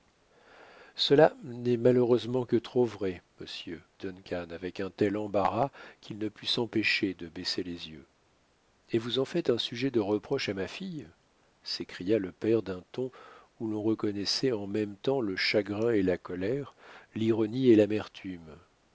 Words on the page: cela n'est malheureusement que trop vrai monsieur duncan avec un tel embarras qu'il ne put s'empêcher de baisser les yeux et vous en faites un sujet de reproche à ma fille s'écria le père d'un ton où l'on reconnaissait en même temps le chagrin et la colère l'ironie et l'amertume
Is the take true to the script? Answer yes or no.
yes